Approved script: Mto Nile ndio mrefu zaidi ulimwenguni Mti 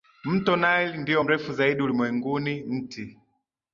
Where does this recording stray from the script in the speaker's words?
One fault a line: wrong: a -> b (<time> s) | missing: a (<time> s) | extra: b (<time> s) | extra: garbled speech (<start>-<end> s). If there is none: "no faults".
no faults